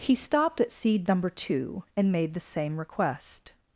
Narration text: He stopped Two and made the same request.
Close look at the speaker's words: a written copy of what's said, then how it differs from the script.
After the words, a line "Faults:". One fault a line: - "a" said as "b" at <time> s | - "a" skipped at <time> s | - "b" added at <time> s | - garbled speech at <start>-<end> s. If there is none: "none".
He stopped at seed number Two and made the same request.
Faults:
- "at seed number" added at 0.6 s